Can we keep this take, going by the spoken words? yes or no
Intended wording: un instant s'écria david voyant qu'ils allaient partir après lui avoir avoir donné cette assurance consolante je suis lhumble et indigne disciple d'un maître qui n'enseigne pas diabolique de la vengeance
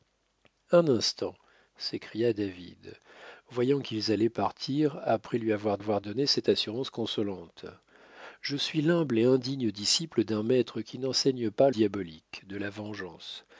yes